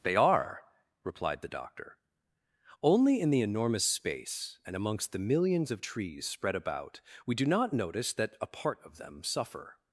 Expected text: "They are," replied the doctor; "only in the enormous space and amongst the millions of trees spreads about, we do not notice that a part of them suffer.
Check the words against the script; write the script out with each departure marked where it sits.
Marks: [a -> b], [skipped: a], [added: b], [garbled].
"They are," replied the doctor; "only in the enormous space and amongst the millions of trees [spreads -> spread] about, we do not notice that a part of them suffer.